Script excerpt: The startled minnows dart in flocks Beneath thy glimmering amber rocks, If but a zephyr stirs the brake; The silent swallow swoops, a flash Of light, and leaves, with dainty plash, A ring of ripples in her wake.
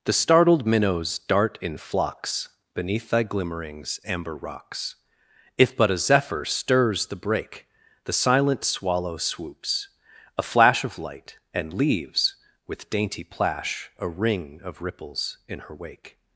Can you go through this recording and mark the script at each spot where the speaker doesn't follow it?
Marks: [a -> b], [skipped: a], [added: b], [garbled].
The startled minnows dart in flocks Beneath thy [glimmering -> glimmerings] amber rocks, If but a zephyr stirs the brake; The silent swallow swoops, a flash Of light, and leaves, with dainty plash, A ring of ripples in her wake.